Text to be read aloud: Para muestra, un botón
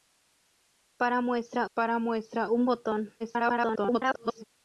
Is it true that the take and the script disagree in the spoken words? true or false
true